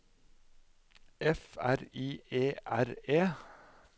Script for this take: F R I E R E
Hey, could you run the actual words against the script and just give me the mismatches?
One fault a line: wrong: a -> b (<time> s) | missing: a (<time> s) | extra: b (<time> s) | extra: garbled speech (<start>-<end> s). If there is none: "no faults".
no faults